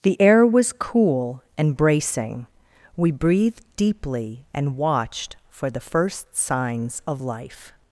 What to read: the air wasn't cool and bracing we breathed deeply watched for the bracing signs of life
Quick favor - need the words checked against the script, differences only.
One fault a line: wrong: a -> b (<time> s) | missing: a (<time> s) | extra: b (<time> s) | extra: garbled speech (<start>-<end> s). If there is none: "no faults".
wrong: wasn't -> was (0.5 s)
extra: and (4.5 s)
wrong: bracing -> first (5.8 s)